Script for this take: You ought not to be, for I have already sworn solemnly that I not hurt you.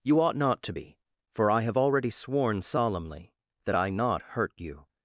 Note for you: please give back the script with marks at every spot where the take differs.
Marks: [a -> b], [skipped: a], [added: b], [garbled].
You ought not to be, for I have already sworn solemnly that I not hurt you.